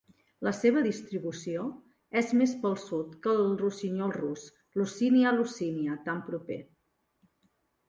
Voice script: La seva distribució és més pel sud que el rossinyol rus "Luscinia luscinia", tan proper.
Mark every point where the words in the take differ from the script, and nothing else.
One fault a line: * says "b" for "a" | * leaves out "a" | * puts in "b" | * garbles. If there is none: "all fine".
all fine